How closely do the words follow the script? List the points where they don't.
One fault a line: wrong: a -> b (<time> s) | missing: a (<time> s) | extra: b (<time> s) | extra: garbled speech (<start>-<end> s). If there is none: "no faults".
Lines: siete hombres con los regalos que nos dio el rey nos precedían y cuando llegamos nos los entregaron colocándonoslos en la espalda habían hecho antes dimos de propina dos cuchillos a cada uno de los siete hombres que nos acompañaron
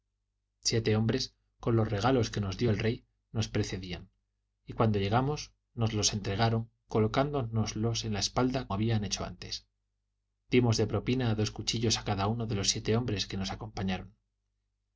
no faults